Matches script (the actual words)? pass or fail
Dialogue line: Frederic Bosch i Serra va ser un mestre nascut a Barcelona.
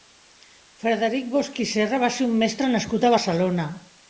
pass